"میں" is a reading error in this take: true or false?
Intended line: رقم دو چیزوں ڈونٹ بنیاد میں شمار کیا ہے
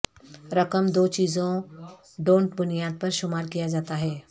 true